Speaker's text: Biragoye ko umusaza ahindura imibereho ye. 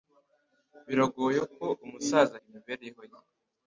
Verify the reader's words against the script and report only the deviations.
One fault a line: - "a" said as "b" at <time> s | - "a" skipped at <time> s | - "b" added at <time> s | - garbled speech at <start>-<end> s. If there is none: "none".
- "ahindura" skipped at 2.3 s